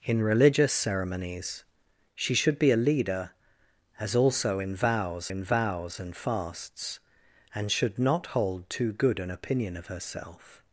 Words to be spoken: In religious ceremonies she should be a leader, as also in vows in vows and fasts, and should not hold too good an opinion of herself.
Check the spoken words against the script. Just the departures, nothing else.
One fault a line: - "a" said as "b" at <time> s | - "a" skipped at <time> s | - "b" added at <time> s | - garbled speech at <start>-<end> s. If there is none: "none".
none